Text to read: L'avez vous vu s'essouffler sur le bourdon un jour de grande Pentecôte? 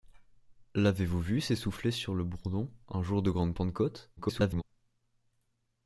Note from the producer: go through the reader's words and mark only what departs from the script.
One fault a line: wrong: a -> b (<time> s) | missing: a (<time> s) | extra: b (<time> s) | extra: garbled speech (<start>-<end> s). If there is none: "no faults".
extra: garbled speech (4.2-4.6 s)